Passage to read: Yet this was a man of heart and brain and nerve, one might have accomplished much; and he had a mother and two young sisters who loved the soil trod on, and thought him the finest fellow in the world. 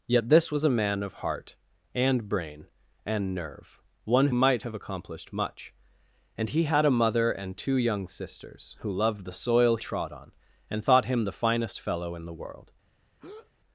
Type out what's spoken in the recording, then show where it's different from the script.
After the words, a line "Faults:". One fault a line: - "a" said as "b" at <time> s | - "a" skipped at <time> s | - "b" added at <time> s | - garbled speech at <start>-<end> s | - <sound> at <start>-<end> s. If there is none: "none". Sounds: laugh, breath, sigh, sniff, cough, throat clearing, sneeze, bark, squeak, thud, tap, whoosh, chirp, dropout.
Yet this was a man of heart and brain and nerve, one might have accomplished much; and he had a mother and two young sisters who loved the soil trod on, and thought him the finest fellow in the world.
Faults:
- breath at 13.2-13.5 s